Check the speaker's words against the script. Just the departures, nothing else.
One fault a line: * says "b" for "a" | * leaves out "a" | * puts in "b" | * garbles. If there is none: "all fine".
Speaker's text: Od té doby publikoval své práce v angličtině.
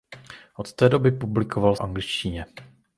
* leaves out "své práce v"